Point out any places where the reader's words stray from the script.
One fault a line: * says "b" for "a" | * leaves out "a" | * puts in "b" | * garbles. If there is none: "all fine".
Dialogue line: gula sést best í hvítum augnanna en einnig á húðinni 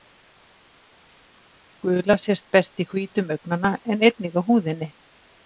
all fine